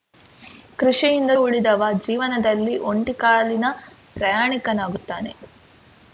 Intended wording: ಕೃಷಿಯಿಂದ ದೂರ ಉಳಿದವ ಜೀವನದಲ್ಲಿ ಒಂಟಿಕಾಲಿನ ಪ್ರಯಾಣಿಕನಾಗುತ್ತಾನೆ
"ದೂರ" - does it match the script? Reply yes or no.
no